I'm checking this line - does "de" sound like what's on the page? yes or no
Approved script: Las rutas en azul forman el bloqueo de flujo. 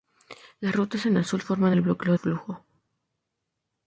no